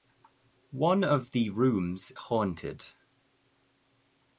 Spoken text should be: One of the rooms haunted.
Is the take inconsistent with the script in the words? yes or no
no